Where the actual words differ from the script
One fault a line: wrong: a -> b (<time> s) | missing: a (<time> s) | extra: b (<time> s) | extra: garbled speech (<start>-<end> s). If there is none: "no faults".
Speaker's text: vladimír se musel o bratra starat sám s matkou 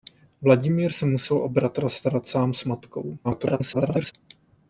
extra: garbled speech (3.2-4.1 s)